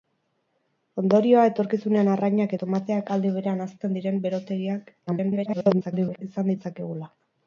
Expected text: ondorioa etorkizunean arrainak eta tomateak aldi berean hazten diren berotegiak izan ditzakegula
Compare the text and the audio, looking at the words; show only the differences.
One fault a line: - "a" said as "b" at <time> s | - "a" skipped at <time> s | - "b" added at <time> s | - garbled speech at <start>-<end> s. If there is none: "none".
- "eta" skipped at 2.6 s
- garbled speech at 5.1-6.2 s